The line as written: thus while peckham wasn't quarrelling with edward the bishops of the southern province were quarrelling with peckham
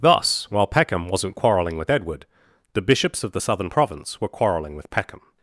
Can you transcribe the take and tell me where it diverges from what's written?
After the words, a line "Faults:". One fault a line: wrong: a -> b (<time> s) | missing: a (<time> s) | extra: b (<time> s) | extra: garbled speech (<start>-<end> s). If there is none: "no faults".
thus while peckham wasn't quarrelling with edward the bishops of the southern province were quarrelling with peckham
Faults:
no faults